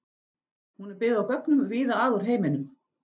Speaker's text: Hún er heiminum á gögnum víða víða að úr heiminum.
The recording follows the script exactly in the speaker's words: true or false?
false